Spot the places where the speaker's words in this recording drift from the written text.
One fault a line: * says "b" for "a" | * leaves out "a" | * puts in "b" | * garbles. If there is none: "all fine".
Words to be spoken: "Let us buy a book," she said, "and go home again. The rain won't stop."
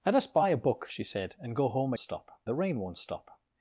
* says "stop" for "again"